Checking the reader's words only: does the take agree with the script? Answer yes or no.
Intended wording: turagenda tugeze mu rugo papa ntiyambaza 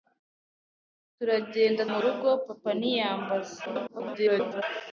no